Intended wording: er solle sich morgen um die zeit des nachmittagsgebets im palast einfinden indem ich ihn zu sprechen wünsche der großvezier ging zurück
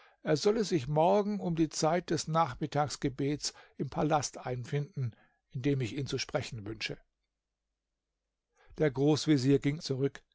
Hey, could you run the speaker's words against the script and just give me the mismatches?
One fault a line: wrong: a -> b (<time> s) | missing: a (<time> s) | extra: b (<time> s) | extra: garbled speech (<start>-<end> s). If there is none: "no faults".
no faults